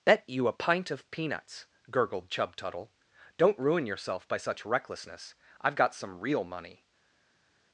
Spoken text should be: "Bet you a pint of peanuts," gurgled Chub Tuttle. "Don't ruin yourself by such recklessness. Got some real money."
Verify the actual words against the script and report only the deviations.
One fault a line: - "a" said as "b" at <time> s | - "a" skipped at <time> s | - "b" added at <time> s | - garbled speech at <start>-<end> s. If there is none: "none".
- "I've" added at 5.6 s